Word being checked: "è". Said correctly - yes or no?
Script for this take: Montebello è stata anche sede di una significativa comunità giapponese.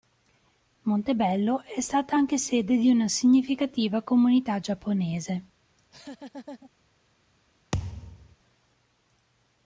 yes